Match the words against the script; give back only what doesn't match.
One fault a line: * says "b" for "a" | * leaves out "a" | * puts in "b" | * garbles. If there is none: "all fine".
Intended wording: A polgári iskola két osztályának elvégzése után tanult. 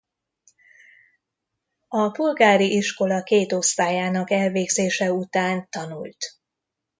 all fine